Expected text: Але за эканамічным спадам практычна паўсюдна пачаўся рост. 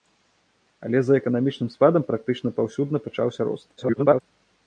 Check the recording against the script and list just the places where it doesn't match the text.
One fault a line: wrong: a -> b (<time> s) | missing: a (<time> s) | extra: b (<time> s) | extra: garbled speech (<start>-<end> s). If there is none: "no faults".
extra: garbled speech (3.8-4.2 s)